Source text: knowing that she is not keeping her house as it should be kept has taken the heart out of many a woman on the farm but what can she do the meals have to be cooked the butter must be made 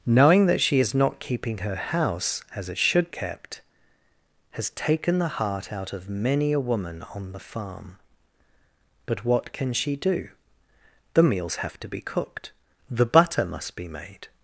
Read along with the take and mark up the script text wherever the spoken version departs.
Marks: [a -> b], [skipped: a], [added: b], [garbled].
knowing that she is not keeping her house as it should [skipped: be] kept has taken the heart out of many a woman on the farm but what can she do the meals have to be cooked the butter must be made